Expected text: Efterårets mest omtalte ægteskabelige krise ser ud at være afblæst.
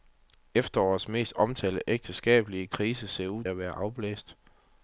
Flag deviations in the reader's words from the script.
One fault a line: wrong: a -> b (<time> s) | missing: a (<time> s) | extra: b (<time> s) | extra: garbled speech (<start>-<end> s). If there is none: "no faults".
no faults